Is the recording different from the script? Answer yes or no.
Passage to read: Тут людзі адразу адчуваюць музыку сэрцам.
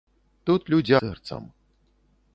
yes